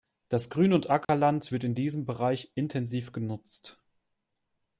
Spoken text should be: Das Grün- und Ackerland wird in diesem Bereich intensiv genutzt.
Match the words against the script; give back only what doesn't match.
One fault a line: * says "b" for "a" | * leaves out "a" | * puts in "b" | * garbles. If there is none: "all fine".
all fine